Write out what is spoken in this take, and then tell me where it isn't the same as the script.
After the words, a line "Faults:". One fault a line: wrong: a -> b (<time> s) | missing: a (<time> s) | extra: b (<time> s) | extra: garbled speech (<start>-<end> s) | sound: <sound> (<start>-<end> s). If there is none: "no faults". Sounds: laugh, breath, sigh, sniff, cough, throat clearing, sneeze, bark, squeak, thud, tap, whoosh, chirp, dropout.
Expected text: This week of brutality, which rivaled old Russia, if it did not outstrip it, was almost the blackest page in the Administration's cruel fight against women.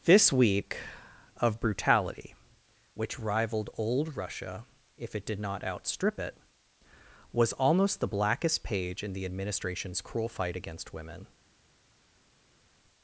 This week of brutality, which rivaled old Russia, if it did not outstrip it, was almost the blackest page in the Administration's cruel fight against women.
Faults:
no faults